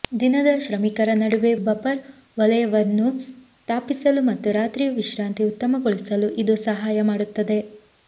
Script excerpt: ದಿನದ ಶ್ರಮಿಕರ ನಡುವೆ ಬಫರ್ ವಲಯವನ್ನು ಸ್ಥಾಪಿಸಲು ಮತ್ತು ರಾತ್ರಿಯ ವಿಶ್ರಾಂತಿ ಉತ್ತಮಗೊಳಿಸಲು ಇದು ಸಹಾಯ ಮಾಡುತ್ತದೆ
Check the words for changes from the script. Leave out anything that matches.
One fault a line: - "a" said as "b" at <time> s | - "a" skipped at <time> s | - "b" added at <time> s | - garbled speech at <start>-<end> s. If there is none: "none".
none